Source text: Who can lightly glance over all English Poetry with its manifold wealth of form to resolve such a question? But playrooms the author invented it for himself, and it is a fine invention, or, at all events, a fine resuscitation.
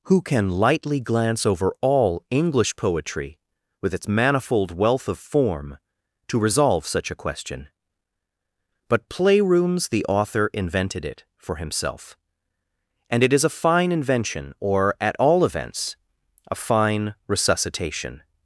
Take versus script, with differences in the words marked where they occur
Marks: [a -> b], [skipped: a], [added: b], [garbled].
Who can lightly glance over all English Poetry with its manifold wealth of form to resolve such a question? But playrooms the author invented it for himself, and it is a fine invention, or, at all events, a fine resuscitation.